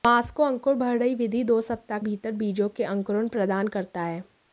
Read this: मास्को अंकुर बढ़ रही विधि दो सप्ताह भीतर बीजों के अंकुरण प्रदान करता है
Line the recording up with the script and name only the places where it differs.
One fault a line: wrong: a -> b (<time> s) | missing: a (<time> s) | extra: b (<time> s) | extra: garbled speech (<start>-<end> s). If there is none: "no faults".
no faults